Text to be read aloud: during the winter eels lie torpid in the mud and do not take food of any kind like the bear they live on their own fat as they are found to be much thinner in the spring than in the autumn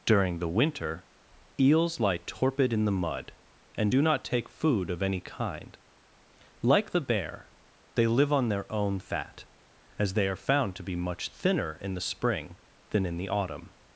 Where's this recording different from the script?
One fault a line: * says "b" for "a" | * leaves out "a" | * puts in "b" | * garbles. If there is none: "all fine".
all fine